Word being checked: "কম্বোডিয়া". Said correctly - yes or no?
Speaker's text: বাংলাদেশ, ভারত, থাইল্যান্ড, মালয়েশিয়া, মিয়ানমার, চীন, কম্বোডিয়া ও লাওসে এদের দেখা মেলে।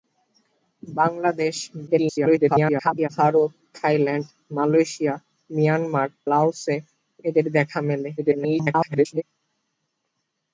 no